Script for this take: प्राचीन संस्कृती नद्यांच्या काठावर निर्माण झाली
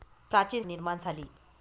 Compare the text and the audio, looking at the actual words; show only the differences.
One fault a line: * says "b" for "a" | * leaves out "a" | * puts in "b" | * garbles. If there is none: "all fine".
* leaves out "संस्कृती नद्यांच्या काठावर"